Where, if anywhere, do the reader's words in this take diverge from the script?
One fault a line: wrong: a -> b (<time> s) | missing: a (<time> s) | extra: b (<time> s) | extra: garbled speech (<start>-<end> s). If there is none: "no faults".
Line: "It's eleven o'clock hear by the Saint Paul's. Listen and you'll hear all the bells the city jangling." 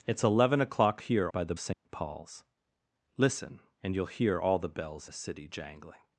no faults